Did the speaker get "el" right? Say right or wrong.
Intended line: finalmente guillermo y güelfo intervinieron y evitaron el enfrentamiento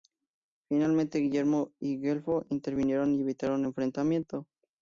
wrong